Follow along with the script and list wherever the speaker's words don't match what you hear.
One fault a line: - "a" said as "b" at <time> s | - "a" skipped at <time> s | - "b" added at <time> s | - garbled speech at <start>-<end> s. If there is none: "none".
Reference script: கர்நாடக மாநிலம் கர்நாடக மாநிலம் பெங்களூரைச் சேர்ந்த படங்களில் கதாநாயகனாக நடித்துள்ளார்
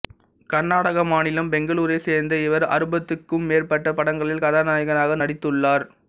- "கர்நாடக மாநிலம் பெங்களூரைச் சேர்ந்த" said as "பெங்களூரைச் சேர்ந்த இவர் அறுபதுக்கும் மேற்பட்ட" at 1.5 s